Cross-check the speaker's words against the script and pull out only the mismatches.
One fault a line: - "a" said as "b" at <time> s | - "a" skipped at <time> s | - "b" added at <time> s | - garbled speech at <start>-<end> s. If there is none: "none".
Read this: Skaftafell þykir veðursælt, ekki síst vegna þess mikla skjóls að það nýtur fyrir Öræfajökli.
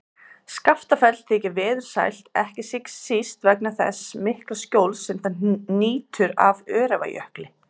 - "að" said as "sem" at 5.1 s
- "fyrir" said as "af" at 6.5 s